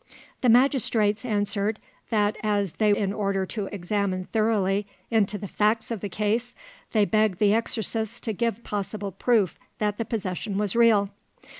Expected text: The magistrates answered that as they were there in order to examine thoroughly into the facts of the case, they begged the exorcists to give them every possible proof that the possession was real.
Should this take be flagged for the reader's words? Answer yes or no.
yes